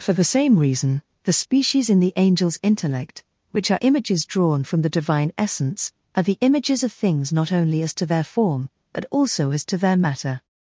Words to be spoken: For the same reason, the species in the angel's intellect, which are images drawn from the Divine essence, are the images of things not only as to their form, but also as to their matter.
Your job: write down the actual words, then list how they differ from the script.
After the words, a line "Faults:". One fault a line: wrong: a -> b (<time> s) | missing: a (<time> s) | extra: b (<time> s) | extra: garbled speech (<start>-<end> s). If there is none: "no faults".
For the same reason, the species in the angel's intellect, which are images drawn from the Divine essence, are the images of things not only as to their form, but also as to their matter.
Faults:
no faults